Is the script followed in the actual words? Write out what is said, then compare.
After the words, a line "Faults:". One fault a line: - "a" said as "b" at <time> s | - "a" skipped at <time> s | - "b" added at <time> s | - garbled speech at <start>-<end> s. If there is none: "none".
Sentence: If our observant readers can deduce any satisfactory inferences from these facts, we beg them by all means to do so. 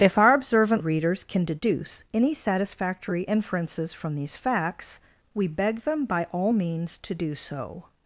If our observant readers can deduce any satisfactory inferences from these facts, we beg them by all means to do so.
Faults:
none